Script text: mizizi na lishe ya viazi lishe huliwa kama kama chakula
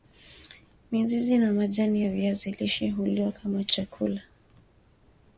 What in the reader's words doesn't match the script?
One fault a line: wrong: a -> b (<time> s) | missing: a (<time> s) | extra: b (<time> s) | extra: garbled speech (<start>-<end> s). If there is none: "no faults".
wrong: lishe -> majani (1.5 s)
missing: kama (3.6 s)